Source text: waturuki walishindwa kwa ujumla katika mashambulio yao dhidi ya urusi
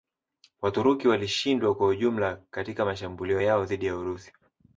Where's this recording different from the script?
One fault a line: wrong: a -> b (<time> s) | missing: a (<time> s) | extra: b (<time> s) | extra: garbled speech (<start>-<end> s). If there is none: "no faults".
no faults